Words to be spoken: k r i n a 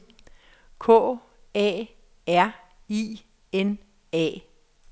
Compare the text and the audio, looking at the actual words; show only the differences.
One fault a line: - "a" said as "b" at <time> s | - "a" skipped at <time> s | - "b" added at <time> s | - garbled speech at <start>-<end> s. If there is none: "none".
- "a" added at 1.6 s